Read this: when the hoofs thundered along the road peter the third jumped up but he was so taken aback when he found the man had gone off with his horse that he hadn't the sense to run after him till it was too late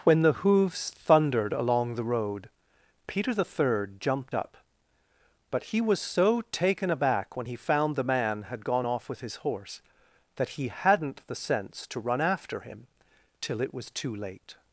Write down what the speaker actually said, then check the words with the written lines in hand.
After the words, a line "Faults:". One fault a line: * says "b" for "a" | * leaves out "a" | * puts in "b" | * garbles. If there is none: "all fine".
when the hoofs thundered along the road peter the third jumped up but he was so taken aback when he found the man had gone off with his horse that he hadn't the sense to run after him till it was too late
Faults:
all fine